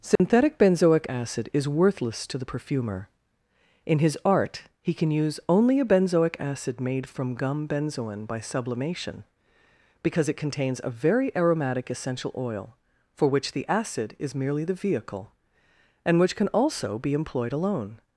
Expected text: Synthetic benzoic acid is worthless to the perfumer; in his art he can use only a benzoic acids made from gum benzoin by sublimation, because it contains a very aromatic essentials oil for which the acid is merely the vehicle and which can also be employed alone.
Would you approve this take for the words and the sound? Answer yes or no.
no